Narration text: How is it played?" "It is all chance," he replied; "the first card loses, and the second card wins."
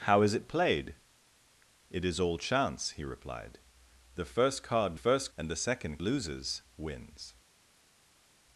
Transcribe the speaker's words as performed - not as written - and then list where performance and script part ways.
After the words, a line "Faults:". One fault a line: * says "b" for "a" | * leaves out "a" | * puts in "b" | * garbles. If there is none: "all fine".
How is it played?" "It is all chance," he replied; "the first card first, and the second loses wins."
Faults:
* says "first" for "loses"
* says "loses" for "card"